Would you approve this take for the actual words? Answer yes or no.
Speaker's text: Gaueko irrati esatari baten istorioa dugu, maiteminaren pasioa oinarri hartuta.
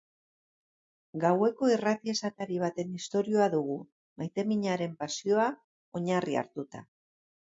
yes